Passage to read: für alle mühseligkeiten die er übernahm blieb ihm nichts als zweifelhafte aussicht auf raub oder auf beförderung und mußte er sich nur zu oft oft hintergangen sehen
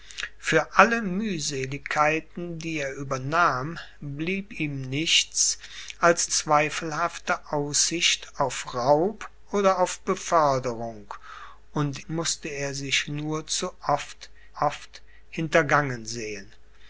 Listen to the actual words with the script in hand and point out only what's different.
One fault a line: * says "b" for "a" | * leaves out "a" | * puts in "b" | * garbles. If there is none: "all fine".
all fine